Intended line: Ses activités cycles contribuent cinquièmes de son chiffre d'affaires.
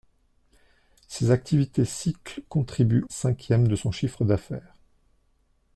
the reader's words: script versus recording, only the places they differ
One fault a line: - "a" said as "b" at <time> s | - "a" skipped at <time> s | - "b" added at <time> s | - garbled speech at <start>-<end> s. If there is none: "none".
none